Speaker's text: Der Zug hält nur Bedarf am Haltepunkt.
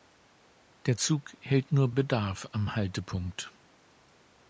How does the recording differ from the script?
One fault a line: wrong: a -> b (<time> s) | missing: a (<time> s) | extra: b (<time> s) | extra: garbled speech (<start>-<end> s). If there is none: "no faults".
no faults